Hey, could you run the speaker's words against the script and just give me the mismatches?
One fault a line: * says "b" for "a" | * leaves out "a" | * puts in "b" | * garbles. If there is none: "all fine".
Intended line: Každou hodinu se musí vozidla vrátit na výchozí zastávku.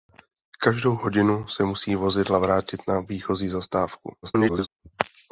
* garbles